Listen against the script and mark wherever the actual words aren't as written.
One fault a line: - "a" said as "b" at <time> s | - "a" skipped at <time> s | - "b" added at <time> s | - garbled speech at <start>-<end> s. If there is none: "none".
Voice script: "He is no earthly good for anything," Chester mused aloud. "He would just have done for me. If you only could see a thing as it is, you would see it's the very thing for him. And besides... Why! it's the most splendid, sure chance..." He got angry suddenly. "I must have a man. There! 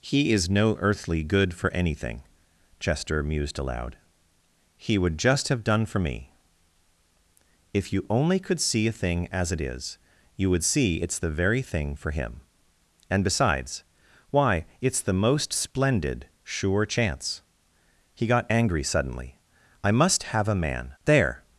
none